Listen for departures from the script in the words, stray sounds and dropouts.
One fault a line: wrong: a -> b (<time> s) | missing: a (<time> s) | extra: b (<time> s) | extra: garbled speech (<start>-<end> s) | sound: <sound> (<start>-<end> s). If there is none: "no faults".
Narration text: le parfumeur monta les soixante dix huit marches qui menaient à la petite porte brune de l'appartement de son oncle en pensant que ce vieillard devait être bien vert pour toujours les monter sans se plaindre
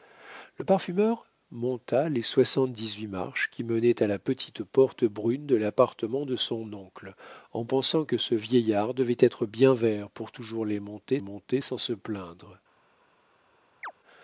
extra: monter (11.2 s)
sound: chirp (13.8-13.9 s)